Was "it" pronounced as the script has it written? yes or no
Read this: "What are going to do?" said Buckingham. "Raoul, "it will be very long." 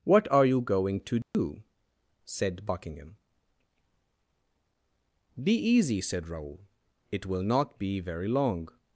yes